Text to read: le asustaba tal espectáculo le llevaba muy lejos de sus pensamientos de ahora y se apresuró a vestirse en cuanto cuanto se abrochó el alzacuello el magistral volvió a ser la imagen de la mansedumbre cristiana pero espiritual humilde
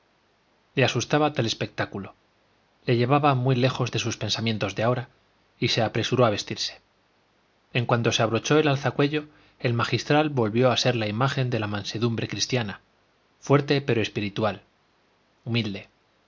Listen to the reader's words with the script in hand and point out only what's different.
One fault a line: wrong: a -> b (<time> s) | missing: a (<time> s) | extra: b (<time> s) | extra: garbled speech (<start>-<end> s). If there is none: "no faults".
missing: cuanto (8.1 s)
extra: fuerte (13.4 s)